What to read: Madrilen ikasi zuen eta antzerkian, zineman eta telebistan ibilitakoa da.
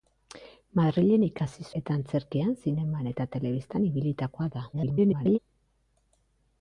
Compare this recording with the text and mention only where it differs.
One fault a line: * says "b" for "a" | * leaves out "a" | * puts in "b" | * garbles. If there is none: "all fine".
* leaves out "zuen"
* garbles